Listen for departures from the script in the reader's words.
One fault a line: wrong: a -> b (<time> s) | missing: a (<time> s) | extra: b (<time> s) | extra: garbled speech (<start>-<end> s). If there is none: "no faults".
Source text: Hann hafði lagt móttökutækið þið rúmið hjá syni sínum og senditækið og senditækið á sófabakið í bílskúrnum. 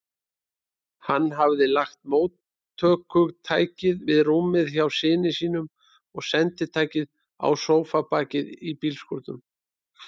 wrong: þið -> við (4.1 s)
missing: og senditækið (7.1 s)